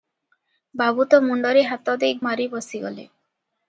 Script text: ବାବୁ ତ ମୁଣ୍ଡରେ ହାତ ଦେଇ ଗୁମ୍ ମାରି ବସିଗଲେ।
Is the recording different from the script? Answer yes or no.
yes